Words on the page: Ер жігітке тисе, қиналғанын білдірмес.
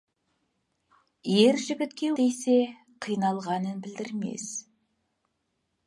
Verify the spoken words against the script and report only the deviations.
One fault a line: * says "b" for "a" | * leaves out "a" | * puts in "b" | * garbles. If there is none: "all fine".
all fine